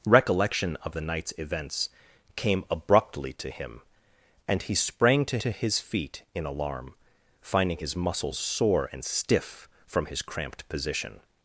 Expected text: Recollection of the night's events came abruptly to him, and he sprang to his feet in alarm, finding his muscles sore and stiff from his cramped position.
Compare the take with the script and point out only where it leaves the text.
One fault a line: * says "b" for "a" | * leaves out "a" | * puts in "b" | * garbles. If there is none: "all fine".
* puts in "to"